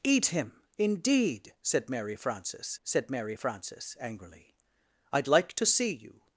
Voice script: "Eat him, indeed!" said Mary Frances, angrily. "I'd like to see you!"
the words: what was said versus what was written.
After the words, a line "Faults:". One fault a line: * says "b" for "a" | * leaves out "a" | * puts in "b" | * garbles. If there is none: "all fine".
"Eat him, indeed!" said Mary Frances said Mary Frances, angrily. "I'd like to see you!"
Faults:
* puts in "said Mary Frances"